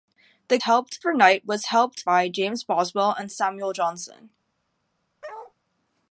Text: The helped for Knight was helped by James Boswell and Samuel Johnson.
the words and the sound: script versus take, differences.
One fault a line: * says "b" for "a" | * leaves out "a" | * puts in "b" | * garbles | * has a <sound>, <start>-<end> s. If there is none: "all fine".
* has a bark, 5.2-5.5 s